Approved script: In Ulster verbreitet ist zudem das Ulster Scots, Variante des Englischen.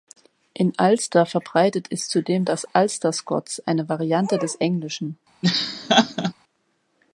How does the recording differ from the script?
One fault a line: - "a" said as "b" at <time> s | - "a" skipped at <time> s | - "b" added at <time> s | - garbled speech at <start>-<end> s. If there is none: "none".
- "eine" added at 3.7 s